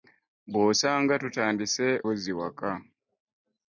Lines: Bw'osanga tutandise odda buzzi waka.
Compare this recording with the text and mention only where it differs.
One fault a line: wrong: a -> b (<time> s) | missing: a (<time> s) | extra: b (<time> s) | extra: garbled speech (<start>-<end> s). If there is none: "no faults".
missing: odda (1.9 s)